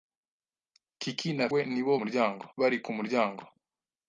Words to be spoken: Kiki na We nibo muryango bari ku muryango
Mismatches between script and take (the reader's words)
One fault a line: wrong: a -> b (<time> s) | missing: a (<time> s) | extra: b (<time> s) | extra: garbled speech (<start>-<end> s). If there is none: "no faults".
no faults